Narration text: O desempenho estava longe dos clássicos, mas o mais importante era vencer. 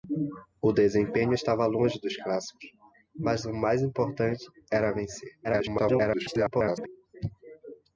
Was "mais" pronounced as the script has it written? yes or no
yes